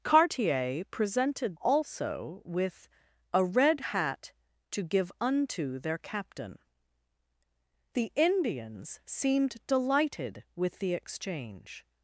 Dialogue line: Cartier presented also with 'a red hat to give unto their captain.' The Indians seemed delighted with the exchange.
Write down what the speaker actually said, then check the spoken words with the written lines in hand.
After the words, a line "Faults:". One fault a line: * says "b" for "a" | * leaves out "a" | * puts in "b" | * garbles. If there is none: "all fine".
Cartier presented also with 'a red hat to give unto their captain.' The Indians seemed delighted with the exchange.
Faults:
all fine